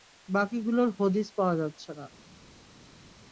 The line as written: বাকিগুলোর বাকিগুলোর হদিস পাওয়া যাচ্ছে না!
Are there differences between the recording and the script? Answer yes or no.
yes